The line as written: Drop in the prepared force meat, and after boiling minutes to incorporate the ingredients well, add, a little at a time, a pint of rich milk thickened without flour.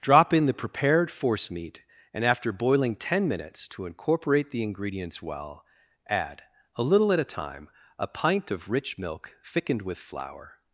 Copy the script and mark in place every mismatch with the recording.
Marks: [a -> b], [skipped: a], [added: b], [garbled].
Drop in the prepared force meat, and after boiling [added: ten] minutes to incorporate the ingredients well, add, a little at a time, a pint of rich milk thickened [without -> with] flour.